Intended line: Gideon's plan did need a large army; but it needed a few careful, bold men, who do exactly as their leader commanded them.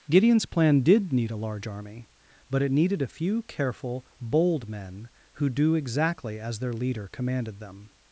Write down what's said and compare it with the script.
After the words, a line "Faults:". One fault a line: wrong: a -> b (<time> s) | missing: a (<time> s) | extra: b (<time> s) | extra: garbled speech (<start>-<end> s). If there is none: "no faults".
Gideon's plan did need a large army; but it needed a few careful, bold men, who do exactly as their leader commanded them.
Faults:
no faults